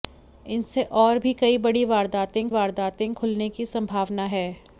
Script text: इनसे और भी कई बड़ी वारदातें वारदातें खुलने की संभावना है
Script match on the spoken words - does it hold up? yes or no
yes